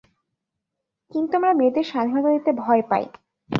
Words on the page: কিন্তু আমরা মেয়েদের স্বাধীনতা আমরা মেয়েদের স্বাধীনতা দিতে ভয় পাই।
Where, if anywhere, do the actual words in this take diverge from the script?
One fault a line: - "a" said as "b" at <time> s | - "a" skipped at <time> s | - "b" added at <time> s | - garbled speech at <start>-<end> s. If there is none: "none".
- "আমরা মেয়েদের স্বাধীনতা" skipped at 2.3 s